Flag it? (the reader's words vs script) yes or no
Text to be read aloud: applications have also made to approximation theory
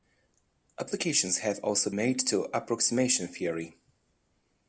no